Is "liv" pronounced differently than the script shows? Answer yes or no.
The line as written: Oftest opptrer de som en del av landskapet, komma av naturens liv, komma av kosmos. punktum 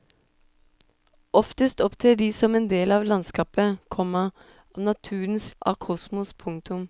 yes